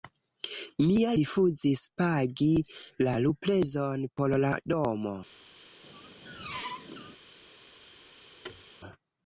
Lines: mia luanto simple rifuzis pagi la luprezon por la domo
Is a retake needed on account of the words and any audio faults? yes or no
yes